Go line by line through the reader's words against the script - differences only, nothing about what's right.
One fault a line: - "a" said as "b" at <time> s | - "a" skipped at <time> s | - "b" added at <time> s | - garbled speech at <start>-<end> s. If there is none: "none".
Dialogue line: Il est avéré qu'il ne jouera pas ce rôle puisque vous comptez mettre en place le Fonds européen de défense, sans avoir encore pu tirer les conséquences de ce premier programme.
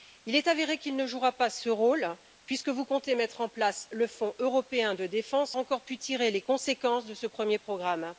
- "sans avoir" skipped at 5.5 s